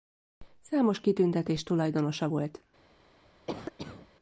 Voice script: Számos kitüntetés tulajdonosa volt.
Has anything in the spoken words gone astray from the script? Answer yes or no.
no